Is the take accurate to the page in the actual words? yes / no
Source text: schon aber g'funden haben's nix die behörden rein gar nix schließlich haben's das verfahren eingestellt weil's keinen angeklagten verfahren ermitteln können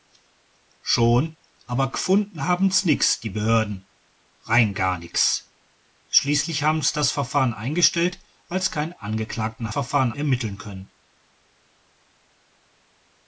yes